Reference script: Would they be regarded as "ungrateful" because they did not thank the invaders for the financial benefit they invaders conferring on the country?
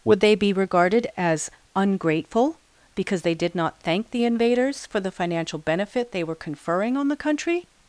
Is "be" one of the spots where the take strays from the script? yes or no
no